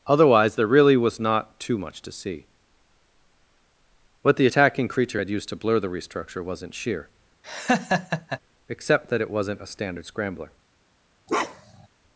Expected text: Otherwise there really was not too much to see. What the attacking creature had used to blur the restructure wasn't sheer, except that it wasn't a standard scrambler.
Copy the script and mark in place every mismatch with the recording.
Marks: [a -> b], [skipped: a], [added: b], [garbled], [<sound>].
Otherwise there really was not too much to see. What the attacking creature had used to blur the restructure wasn't sheer, [laugh] except that it wasn't a standard scrambler. [bark]